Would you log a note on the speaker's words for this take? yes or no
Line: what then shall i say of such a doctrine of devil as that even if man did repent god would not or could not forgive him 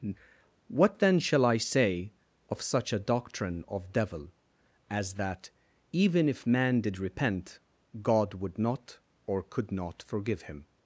no